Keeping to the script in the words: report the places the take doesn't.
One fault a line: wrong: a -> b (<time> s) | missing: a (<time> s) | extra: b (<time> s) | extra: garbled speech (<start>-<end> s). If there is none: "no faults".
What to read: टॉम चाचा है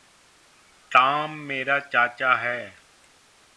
extra: मेरा (1.3 s)